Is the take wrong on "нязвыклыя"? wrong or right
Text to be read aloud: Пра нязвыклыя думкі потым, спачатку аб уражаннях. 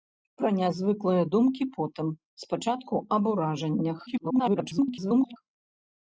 right